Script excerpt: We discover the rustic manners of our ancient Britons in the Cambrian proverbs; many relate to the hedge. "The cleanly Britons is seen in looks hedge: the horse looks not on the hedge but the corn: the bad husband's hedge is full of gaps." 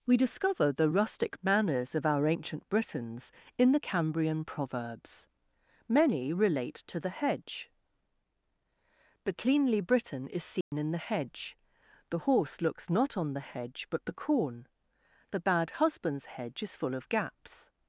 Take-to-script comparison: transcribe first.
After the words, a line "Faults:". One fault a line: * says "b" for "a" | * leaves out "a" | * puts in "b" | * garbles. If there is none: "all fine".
We discover the rustic manners of our ancient Britons in the Cambrian proverbs; many relate to the hedge. "The cleanly Briton is seen in the hedge: the horse looks not on the hedge but the corn: the bad husband's hedge is full of gaps."
Faults:
* says "Briton" for "Britons"
* says "the" for "looks"